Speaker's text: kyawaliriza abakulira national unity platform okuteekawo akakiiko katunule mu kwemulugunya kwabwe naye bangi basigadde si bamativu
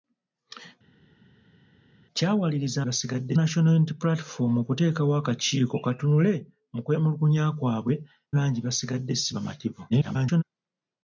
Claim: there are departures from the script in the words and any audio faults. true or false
true